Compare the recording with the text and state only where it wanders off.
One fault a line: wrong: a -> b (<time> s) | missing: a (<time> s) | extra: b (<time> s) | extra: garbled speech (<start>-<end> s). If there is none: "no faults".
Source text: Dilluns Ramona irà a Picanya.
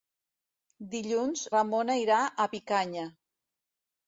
no faults